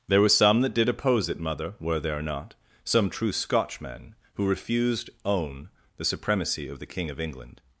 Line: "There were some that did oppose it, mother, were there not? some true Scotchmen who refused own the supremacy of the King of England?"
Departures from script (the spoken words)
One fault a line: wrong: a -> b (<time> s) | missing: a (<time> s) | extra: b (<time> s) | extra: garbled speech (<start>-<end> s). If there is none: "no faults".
no faults